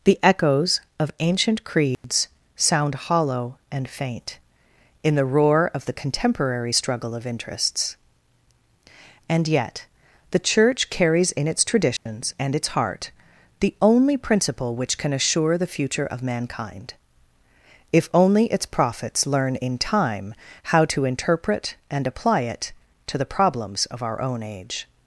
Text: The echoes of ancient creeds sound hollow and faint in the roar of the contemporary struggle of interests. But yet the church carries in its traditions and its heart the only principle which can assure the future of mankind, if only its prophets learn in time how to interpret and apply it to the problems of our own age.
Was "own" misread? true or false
false